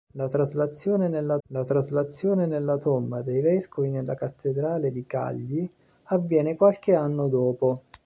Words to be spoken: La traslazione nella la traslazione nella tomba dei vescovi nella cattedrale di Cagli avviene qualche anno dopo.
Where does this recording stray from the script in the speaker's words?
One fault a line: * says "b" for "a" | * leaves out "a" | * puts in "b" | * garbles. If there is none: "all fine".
all fine